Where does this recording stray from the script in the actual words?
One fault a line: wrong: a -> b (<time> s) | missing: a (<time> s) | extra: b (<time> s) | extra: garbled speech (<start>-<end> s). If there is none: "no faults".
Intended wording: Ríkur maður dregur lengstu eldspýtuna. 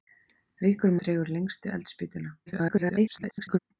missing: maður (0.9 s)
extra: garbled speech (2.5-3.6 s)